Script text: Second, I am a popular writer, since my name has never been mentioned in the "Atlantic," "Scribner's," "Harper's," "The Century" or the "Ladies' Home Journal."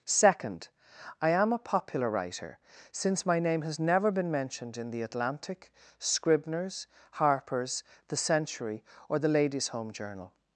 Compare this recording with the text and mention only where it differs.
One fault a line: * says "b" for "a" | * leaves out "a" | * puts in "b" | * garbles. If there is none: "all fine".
all fine